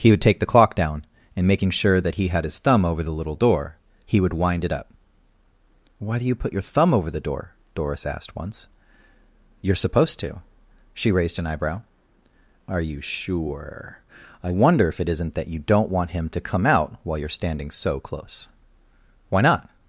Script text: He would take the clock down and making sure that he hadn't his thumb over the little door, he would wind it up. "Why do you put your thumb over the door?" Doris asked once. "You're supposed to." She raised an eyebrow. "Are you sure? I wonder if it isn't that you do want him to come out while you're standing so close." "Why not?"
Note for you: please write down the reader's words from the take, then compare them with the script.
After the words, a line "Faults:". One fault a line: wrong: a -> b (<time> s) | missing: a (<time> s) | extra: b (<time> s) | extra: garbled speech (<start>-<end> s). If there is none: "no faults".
He would take the clock down and making sure that he had his thumb over the little door, he would wind it up. "Why do you put your thumb over the door?" Doris asked once. "You're supposed to." She raised an eyebrow. "Are you sure? I wonder if it isn't that you don't want him to come out while you're standing so close." "Why not?"
Faults:
wrong: hadn't -> had (2.3 s)
wrong: do -> don't (15.6 s)